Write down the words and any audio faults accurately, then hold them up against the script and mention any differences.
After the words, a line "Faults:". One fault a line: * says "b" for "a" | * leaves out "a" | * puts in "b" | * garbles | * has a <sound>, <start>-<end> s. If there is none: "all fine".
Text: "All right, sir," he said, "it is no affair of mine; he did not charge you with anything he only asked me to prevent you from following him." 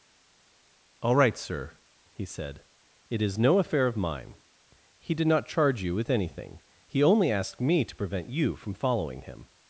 "All right, sir," he said, "it is no affair of mine; he did not charge you with anything he only asked me to prevent you from following him."
Faults:
all fine